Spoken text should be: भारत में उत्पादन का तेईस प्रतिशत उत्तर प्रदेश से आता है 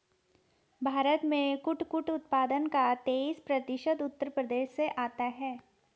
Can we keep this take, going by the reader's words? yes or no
no